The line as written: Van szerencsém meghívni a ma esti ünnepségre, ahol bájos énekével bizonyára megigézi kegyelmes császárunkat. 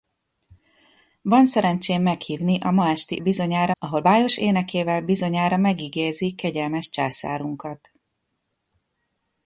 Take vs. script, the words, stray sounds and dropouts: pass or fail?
fail